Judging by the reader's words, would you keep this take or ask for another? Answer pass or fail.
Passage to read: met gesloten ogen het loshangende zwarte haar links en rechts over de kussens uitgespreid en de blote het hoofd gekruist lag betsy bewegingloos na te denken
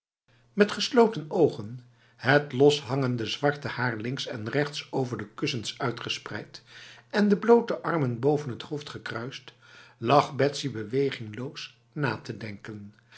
fail